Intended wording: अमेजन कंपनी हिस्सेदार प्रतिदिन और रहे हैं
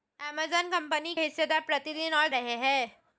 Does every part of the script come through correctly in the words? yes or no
yes